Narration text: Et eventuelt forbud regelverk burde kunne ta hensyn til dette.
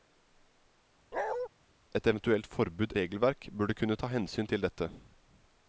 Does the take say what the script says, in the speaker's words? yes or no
yes